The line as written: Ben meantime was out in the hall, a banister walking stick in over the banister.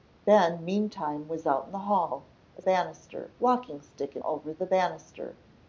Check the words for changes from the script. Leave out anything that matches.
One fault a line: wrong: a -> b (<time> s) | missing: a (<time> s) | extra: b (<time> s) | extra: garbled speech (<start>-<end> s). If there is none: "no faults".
no faults